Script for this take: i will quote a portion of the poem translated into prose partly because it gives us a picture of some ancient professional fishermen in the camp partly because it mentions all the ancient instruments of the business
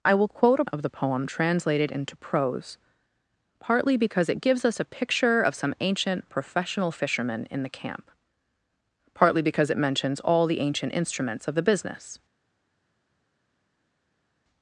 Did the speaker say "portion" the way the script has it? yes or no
no